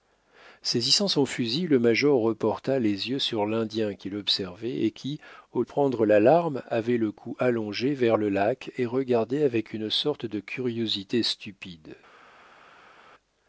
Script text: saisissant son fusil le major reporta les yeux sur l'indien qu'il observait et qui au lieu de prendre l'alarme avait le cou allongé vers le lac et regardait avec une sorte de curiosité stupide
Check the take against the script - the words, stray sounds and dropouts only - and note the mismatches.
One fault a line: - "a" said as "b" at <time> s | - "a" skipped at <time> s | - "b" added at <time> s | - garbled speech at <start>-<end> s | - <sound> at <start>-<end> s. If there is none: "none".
- "lieu de" skipped at 5.6 s